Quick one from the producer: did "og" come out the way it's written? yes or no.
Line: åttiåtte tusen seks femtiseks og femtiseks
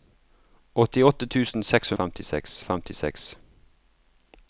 yes